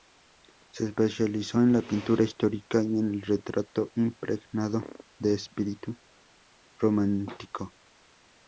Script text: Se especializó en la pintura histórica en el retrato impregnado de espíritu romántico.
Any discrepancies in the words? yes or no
yes